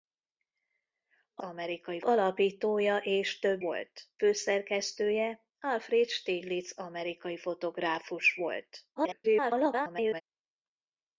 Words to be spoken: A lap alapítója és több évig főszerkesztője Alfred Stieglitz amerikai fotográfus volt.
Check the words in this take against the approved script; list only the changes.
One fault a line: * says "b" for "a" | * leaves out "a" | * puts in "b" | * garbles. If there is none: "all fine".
* says "amerikai" for "lap"
* says "volt" for "évig"
* garbles